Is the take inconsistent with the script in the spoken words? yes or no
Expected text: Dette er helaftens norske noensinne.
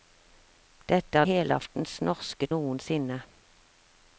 no